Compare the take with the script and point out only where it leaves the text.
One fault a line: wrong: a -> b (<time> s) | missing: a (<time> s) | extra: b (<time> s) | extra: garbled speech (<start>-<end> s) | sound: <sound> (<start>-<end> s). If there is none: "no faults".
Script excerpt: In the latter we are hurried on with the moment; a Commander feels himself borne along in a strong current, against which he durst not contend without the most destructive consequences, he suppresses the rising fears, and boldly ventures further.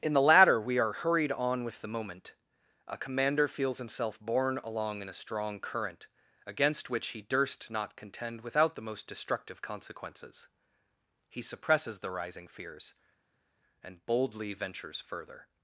no faults